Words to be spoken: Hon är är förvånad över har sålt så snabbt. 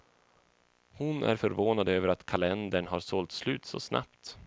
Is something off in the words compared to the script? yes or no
yes